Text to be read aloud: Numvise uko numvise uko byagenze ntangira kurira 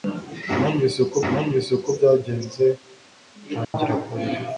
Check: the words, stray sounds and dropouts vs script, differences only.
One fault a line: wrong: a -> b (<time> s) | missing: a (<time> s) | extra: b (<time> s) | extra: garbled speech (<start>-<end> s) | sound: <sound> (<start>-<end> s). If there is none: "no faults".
sound: dropout (3.6-3.7 s)